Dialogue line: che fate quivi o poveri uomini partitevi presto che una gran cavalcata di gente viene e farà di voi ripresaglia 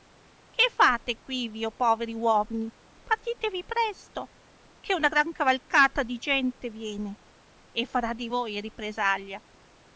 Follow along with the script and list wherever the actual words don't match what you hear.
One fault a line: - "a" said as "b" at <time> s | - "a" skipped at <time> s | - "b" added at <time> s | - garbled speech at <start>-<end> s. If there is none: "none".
none